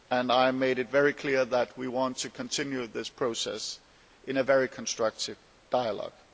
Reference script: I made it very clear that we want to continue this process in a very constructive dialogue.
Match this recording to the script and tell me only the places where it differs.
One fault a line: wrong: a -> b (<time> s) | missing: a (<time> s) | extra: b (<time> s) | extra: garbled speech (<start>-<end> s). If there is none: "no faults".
no faults